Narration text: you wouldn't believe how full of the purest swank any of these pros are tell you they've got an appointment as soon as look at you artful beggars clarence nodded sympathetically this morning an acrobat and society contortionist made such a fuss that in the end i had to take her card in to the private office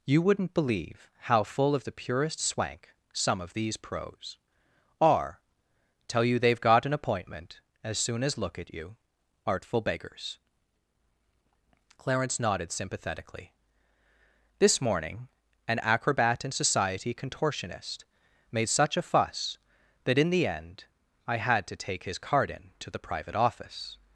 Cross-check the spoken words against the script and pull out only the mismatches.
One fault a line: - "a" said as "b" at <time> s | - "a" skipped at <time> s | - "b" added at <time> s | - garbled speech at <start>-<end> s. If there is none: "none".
- "any" said as "some" at 3.1 s
- "her" said as "his" at 22.1 s